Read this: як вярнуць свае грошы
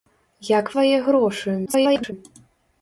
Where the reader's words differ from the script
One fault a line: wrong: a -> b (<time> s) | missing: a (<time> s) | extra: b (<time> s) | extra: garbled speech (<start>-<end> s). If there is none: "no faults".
missing: вярнуць (0.7 s)
extra: garbled speech (1.7-2.1 s)